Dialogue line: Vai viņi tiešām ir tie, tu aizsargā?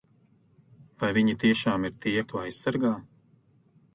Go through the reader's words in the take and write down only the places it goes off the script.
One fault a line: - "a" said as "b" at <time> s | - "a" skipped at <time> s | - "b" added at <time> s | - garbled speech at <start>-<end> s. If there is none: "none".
none